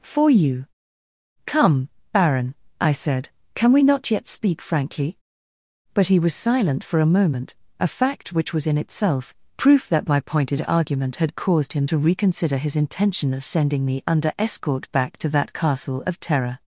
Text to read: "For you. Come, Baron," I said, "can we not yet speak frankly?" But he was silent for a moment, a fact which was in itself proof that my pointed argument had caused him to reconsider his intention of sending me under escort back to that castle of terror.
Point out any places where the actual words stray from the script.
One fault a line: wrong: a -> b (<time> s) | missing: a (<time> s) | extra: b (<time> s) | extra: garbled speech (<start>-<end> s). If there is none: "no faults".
no faults